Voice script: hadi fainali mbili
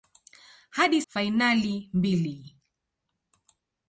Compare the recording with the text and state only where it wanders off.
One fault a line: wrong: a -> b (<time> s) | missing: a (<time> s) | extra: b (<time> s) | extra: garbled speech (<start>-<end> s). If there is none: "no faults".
no faults